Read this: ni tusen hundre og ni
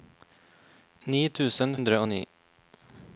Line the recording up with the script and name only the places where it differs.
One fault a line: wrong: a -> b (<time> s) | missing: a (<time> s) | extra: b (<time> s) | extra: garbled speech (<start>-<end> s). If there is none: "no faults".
no faults